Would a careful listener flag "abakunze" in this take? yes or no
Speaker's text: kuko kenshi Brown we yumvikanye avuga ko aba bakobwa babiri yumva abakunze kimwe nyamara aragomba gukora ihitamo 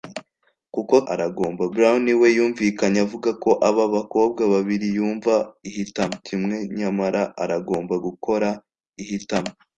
yes